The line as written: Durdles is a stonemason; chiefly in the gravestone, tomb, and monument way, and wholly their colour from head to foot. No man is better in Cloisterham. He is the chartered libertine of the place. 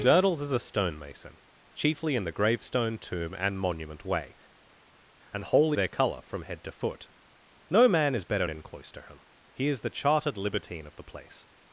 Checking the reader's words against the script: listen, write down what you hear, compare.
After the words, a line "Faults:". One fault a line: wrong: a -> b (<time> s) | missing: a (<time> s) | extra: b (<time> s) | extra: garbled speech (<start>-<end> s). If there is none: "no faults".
Durdles is a stonemason; chiefly in the gravestone, tomb, and monument way, and wholly their colour from head to foot. No man is better in Cloisterham. He is the chartered libertine of the place.
Faults:
no faults